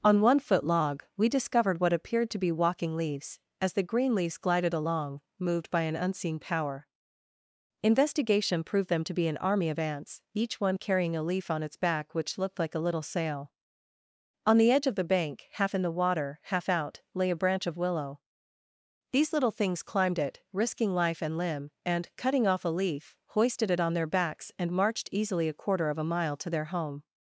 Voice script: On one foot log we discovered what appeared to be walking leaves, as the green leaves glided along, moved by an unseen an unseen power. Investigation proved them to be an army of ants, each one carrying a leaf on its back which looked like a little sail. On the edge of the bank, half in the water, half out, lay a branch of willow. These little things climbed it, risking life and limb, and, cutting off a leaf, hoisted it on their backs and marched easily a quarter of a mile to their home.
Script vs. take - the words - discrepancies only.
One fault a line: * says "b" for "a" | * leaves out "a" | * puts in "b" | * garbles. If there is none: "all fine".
* leaves out "an unseen"